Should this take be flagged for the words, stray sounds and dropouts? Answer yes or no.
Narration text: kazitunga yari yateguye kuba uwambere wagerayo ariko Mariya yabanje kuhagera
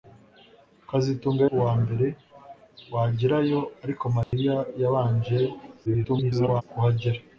yes